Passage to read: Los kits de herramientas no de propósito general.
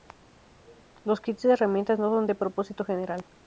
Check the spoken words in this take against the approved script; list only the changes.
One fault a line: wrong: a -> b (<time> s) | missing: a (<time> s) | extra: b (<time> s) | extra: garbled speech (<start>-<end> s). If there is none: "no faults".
extra: son (2.1 s)